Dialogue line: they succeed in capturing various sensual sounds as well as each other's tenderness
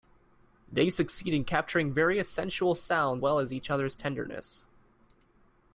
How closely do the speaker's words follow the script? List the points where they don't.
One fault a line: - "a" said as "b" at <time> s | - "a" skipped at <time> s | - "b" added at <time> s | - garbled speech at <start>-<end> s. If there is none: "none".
- "as" skipped at 3.2 s